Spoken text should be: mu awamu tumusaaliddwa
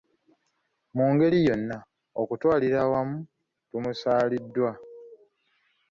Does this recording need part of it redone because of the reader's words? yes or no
yes